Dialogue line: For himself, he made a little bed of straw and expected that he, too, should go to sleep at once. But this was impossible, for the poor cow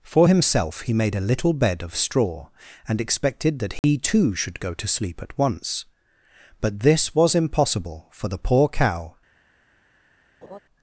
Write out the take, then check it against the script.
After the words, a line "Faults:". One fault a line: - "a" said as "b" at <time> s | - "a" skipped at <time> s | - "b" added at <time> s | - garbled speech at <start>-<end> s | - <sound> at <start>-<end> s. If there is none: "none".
For himself, he made a little bed of straw and expected that he, too, should go to sleep at once. But this was impossible, for the poor cow
Faults:
- dropout at 3.8-3.8 s
- laugh at 10.4-10.6 s